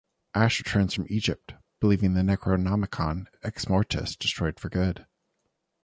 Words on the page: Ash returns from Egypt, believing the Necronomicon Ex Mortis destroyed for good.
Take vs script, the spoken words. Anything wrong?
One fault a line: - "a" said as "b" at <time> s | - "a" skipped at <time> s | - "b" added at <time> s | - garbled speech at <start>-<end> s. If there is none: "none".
none